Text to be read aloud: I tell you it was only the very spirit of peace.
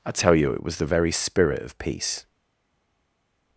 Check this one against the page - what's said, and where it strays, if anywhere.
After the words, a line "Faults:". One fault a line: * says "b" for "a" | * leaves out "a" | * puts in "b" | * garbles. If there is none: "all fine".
I tell you it was the very spirit of peace.
Faults:
* leaves out "only"